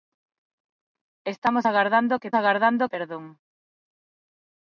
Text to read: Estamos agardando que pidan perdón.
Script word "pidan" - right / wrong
wrong